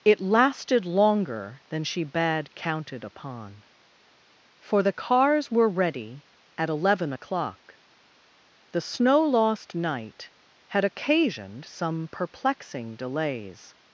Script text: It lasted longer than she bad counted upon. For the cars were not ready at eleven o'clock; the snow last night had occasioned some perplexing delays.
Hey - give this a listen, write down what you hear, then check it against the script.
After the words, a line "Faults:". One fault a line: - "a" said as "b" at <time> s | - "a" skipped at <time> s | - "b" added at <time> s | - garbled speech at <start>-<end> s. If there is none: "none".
It lasted longer than she bad counted upon. For the cars were ready at eleven o'clock; the snow lost night had occasioned some perplexing delays.
Faults:
- "not" skipped at 5.7 s
- "last" said as "lost" at 9.2 s